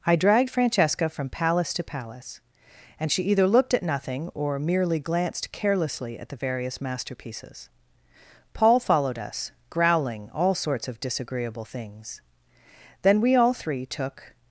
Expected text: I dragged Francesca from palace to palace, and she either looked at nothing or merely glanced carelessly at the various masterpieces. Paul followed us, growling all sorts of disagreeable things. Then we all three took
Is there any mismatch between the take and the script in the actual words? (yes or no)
no